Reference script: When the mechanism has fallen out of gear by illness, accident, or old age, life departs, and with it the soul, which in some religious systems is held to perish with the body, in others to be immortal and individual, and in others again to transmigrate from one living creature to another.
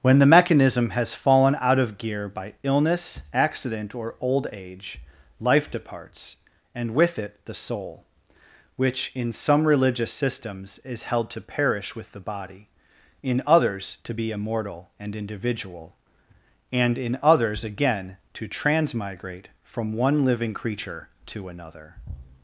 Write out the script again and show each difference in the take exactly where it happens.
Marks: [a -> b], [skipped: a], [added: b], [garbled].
When the mechanism has fallen out of gear by illness, accident, or old age, life departs, and with it the soul, which in some religious systems is held to perish with the body, in others to be immortal and individual, and in others again to transmigrate from one living creature to another.